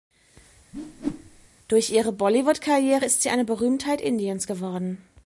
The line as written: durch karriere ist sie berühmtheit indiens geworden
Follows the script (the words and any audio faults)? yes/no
no